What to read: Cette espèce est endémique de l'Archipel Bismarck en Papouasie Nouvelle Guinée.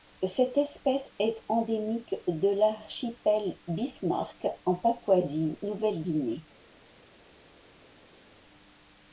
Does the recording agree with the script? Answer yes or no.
yes